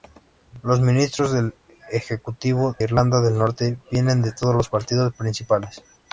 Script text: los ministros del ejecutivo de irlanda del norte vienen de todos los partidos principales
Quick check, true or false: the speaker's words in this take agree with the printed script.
false